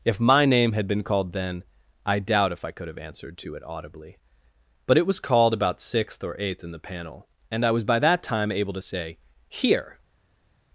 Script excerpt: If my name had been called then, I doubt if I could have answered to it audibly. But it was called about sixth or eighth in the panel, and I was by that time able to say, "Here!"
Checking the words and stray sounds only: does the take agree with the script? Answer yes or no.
yes